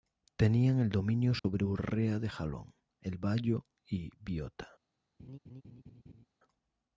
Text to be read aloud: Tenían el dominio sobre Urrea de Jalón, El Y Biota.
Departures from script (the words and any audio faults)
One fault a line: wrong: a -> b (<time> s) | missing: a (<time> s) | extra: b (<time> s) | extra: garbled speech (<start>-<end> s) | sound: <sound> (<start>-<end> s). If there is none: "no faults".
sound: dropout (1.4-1.4 s)
extra: Bayo (3.2 s)
sound: laugh (5.2-6.3 s)